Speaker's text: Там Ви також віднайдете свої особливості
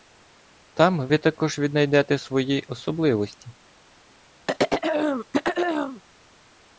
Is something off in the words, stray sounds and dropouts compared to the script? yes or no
yes